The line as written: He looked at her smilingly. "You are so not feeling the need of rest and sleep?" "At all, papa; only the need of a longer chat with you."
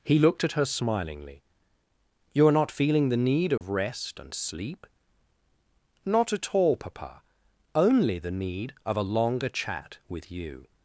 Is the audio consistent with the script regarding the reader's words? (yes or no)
no